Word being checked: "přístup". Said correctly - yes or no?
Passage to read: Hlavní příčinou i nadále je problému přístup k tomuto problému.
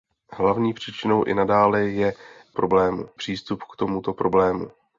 yes